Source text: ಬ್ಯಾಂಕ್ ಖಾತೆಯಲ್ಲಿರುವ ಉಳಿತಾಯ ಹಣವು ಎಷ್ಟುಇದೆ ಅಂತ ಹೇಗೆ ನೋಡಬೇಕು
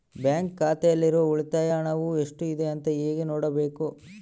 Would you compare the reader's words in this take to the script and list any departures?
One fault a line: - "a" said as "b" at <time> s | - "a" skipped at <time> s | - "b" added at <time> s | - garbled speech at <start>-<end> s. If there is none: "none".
none